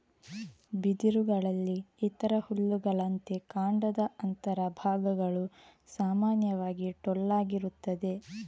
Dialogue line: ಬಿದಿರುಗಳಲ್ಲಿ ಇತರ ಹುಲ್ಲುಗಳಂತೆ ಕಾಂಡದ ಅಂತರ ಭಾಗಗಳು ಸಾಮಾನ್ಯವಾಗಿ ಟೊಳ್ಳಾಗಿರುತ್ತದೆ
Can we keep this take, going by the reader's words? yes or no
yes